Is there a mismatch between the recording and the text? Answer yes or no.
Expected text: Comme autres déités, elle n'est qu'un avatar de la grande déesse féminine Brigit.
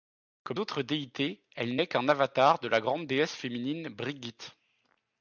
no